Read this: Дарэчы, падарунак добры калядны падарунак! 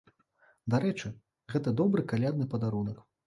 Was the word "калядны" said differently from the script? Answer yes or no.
no